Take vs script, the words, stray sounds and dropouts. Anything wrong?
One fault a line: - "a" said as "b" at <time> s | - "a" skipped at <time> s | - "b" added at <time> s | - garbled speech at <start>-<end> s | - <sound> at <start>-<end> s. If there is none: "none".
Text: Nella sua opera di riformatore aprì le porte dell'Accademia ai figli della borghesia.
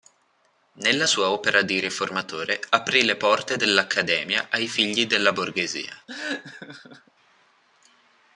- laugh at 6.1-7.1 s